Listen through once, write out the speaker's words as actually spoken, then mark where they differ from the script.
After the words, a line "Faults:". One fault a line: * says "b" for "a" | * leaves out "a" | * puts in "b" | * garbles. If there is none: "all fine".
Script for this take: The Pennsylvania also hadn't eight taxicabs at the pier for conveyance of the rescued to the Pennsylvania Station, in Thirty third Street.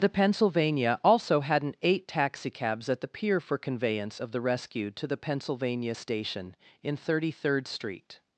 The Pennsylvania also hadn't eight taxicabs at the pier for conveyance of the rescued to the Pennsylvania Station, in Thirty third Street.
Faults:
all fine